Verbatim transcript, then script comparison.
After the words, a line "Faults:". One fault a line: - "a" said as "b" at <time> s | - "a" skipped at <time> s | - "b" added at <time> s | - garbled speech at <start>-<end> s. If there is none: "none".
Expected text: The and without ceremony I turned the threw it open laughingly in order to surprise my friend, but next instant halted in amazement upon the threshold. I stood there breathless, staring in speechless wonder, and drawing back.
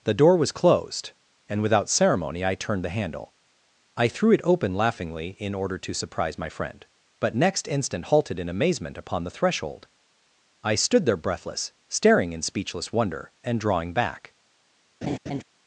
The door was closed, and without ceremony I turned the handle. I threw it open laughingly in order to surprise my friend, but next instant halted in amazement upon the threshold. I stood there breathless, staring in speechless wonder, and drawing back.
Faults:
- "door was closed" added at 0.1 s
- "handle I" added at 3.0 s